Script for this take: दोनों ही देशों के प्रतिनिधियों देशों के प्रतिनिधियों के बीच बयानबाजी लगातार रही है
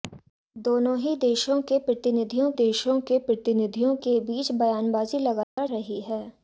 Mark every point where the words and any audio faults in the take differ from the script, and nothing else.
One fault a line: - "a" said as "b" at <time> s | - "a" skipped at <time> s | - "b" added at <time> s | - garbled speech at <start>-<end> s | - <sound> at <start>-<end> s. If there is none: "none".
- dropout at 5.4-5.6 s